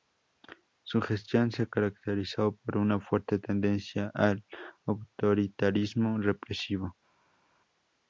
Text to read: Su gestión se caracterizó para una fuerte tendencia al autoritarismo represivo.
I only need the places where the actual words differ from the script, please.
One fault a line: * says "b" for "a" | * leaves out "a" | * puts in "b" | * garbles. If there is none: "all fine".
* says "por" for "para"